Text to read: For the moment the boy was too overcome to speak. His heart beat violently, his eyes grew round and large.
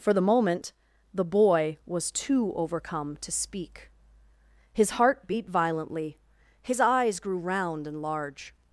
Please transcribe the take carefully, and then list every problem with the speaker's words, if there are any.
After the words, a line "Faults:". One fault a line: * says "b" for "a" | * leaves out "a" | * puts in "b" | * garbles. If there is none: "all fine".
For the moment the boy was too overcome to speak. His heart beat violently, his eyes grew round and large.
Faults:
all fine